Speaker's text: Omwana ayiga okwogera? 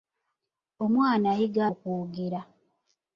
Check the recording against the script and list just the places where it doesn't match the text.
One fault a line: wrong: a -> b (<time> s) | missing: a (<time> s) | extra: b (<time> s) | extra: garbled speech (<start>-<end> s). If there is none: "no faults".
no faults